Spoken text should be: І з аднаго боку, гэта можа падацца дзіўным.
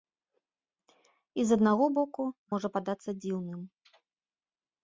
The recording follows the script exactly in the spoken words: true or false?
false